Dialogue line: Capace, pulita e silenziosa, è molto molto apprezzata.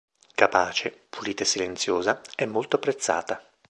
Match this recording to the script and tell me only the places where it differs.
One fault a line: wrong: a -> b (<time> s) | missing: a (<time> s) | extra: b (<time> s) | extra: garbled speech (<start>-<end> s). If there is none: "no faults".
missing: molto (2.8 s)